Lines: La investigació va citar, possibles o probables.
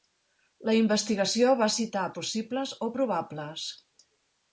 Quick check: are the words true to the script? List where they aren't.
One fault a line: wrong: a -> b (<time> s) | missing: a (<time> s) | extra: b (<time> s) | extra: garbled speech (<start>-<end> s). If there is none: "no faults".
no faults